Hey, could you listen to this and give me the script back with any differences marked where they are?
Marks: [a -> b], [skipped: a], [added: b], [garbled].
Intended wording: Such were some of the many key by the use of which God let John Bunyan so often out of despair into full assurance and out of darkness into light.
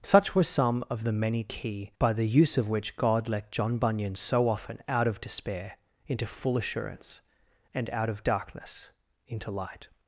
Such were some of the many key by the use of which God let John Bunyan so often out of despair into full assurance and out of darkness into light.